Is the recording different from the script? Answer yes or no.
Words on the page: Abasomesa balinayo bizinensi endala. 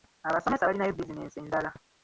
no